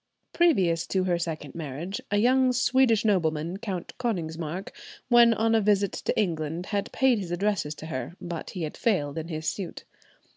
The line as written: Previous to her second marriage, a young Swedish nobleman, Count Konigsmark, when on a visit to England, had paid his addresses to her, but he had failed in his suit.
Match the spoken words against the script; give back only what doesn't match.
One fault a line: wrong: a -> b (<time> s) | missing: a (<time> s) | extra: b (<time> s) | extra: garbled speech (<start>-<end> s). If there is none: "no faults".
no faults